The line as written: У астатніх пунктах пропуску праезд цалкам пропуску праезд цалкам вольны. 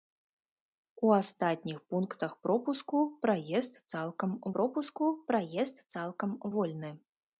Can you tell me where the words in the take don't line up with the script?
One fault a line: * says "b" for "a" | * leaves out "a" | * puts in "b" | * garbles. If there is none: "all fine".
all fine